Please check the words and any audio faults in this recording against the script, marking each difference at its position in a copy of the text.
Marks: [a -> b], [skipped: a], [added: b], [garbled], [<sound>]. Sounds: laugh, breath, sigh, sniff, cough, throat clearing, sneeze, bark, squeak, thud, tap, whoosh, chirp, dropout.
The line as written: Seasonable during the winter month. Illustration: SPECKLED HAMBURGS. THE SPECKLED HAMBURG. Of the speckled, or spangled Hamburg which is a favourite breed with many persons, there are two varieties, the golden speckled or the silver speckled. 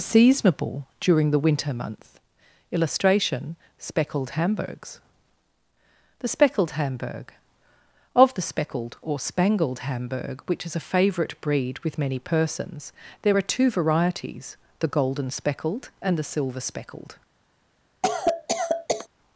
Seasonable during the winter month. Illustration: SPECKLED HAMBURGS. THE SPECKLED HAMBURG. Of the speckled, or spangled Hamburg which is a favourite breed with many persons, there are two varieties, the golden speckled [or -> and] the silver speckled. [cough]